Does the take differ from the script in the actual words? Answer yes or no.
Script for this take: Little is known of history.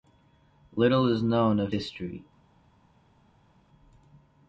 no